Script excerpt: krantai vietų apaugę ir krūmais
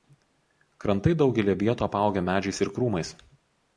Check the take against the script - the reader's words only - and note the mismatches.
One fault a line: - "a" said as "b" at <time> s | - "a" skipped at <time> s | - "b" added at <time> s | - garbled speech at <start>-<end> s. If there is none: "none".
- "daugelyje" added at 1.2 s
- "medžiais" added at 2.3 s